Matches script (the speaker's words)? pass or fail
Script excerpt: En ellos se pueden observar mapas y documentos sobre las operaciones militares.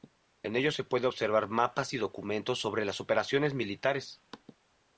pass